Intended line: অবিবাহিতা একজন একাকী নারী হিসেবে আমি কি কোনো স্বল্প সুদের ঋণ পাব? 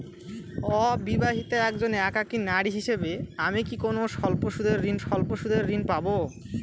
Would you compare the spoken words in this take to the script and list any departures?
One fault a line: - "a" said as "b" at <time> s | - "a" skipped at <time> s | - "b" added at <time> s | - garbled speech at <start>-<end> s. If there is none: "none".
- "স্বল্প সুদের ঋণ" added at 5.0 s